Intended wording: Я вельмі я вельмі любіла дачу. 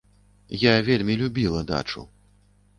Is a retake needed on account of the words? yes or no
yes